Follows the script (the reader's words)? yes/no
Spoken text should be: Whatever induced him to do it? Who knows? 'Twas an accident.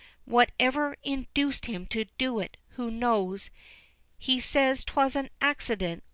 no